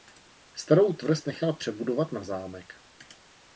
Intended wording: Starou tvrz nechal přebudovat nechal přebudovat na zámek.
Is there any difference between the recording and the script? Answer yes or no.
yes